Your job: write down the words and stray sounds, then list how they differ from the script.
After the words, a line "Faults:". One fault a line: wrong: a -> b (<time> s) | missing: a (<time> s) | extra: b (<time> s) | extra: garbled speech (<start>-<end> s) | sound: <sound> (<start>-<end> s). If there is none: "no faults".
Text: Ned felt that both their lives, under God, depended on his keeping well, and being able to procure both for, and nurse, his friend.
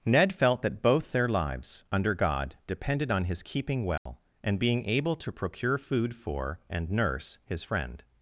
Ned felt that both their lives, under God, depended on his keeping well, and being able to procure food for, and nurse, his friend.
Faults:
sound: dropout (4.0-4.1 s)
wrong: both -> food (5.8 s)